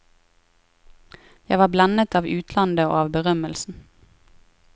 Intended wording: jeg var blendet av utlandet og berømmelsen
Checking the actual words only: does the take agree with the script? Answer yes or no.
no